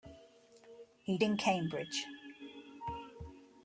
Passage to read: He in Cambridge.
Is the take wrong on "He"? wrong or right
right